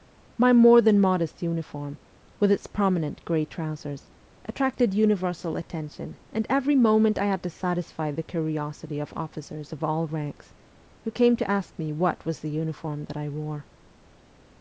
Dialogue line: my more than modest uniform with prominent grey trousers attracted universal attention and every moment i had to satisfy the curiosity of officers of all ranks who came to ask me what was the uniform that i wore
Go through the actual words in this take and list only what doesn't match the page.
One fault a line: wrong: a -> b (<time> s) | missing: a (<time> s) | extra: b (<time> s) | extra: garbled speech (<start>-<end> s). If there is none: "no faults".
extra: its (2.5 s)